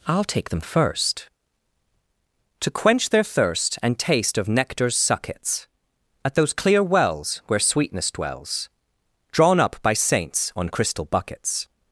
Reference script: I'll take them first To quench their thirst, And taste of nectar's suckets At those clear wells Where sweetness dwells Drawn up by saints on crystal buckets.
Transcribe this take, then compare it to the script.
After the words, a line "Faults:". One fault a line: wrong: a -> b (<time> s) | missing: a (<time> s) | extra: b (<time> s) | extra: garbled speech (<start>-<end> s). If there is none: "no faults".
I'll take them first To quench their thirst, And taste of nectar's suckets At those clear wells Where sweetness dwells Drawn up by saints on crystal buckets.
Faults:
no faults